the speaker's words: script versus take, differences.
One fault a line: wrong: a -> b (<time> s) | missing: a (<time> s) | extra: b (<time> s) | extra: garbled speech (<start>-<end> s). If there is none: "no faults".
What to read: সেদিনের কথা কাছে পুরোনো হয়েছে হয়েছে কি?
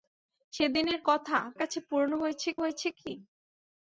no faults